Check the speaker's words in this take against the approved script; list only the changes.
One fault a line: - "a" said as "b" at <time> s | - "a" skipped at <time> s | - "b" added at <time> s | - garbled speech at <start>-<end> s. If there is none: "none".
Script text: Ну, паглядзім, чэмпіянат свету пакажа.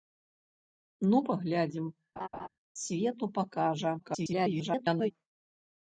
- "чэмпіянат" skipped at 1.9 s
- garbled speech at 4.0-5.1 s